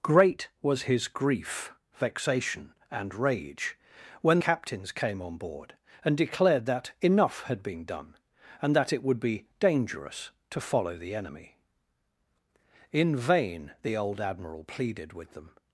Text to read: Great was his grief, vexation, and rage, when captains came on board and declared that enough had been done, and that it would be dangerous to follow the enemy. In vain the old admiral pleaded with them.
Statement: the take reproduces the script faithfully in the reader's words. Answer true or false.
true